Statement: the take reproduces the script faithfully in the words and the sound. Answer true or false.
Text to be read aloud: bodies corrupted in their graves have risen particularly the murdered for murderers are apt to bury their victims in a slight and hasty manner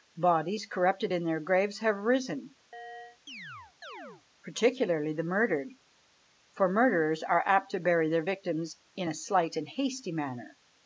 false